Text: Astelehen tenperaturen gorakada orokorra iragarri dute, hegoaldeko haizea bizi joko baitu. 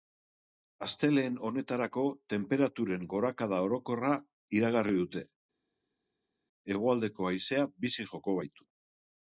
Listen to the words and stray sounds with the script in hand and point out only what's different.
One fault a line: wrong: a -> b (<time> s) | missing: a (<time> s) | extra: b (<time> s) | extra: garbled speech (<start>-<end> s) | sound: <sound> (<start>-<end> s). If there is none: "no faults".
extra: honetarako (1.5 s)